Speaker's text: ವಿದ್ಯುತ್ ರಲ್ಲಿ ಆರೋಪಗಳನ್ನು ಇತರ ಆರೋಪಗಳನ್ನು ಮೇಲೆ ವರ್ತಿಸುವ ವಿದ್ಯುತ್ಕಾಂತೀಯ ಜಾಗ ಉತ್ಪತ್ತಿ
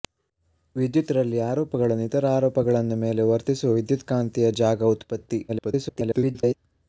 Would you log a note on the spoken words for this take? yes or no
yes